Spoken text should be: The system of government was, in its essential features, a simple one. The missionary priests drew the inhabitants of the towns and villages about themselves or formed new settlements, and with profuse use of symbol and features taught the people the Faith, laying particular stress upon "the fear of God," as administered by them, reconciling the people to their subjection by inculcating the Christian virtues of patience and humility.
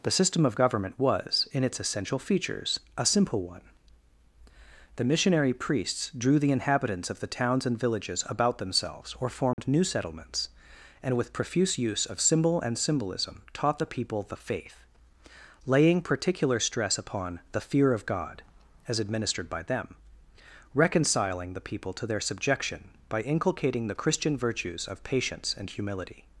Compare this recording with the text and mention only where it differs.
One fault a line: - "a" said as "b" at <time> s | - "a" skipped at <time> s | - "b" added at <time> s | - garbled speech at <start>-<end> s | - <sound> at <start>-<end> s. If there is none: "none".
- dropout at 9.5-9.6 s
- "features" said as "symbolism" at 12.8 s